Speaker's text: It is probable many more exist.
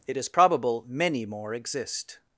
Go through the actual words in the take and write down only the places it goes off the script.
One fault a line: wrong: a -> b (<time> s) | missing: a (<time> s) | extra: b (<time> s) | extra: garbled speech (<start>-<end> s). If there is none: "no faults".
no faults